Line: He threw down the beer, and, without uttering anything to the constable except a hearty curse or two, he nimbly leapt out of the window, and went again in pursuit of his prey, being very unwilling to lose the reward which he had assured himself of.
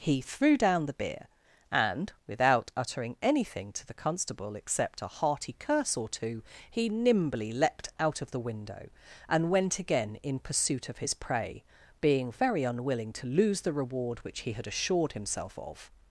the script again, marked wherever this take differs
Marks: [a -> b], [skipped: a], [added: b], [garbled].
He threw down the beer, and, without uttering anything to the constable except a hearty curse or two, he nimbly leapt out of the window, and went again in pursuit of his prey, being very unwilling to lose the reward which he had assured himself of.